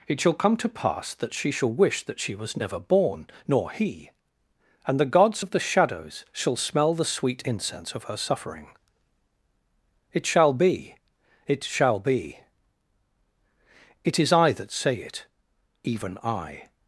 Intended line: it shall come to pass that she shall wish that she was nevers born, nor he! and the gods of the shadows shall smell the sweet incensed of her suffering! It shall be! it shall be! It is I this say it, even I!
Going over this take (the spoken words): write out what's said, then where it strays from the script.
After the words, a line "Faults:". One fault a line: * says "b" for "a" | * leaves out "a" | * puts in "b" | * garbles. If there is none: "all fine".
it shall come to pass that she shall wish that she was never born, nor he! and the gods of the shadows shall smell the sweet incense of her suffering! It shall be! it shall be! It is I that say it, even I!
Faults:
* says "never" for "nevers"
* says "incense" for "incensed"
* says "that" for "this"